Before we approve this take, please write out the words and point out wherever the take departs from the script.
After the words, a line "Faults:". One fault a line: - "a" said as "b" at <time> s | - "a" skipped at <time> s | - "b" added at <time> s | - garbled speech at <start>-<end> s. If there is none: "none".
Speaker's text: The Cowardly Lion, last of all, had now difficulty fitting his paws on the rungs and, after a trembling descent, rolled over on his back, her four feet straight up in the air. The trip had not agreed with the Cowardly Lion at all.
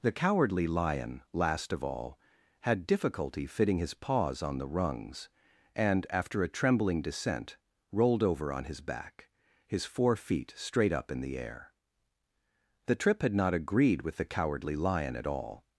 The Cowardly Lion, last of all, had difficulty fitting his paws on the rungs and, after a trembling descent, rolled over on his back, his four feet straight up in the air. The trip had not agreed with the Cowardly Lion at all.
Faults:
- "now" skipped at 2.9 s
- "her" said as "his" at 9.7 s